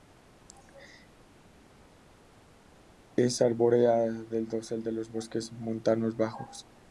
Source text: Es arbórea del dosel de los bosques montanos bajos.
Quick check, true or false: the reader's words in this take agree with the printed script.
true